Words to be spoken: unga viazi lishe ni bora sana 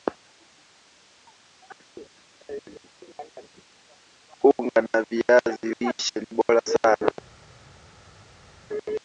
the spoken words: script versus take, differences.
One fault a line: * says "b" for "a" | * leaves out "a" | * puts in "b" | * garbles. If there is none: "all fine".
* puts in "wa"